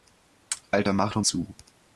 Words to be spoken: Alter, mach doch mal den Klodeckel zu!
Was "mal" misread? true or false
true